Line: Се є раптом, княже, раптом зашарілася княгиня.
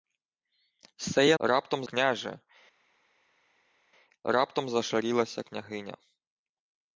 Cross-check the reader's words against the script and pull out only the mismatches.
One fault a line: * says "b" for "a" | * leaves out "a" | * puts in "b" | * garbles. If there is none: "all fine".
all fine